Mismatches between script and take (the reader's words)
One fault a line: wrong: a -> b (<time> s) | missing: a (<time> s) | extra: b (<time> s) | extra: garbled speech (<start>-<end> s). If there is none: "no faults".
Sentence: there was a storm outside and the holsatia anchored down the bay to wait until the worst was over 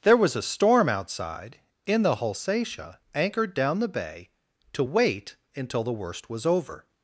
wrong: and -> in (1.9 s)